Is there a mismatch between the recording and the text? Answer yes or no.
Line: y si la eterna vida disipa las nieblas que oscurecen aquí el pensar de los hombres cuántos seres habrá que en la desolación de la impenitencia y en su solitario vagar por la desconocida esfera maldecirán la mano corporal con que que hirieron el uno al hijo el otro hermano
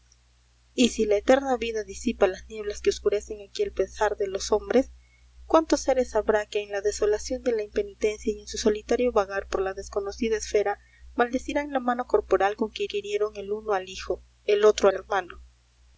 no